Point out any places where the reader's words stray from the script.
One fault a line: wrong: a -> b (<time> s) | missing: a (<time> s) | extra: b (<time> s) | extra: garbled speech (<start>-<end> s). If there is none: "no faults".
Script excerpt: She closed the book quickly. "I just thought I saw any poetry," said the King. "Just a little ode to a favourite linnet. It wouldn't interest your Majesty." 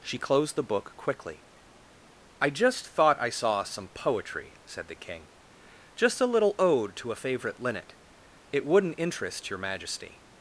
wrong: any -> some (3.6 s)